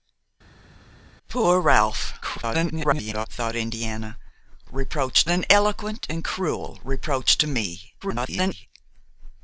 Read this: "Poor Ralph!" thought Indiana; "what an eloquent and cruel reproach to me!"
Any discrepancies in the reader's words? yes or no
yes